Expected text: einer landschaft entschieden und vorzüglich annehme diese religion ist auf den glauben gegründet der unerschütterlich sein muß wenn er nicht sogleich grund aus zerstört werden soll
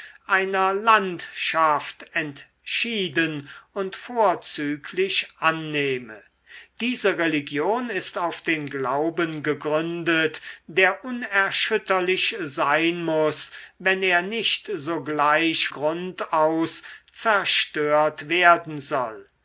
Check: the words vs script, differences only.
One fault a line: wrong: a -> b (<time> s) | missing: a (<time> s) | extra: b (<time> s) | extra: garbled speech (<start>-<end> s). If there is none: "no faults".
no faults